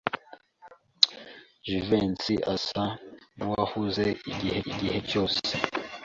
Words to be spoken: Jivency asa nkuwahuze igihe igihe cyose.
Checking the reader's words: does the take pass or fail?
pass